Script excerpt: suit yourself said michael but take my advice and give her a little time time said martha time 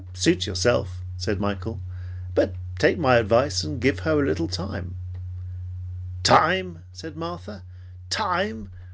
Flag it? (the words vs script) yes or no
no